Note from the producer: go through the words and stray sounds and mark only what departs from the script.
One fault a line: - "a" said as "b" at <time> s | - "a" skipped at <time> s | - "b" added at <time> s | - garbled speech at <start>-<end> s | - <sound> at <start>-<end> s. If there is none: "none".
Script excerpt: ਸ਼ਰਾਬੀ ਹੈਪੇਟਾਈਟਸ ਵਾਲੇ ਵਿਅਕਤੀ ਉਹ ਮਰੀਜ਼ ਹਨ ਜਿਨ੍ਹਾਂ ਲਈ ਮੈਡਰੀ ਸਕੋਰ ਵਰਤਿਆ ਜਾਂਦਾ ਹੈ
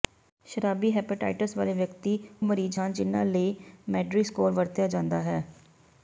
- "ਉਹ" skipped at 2.2 s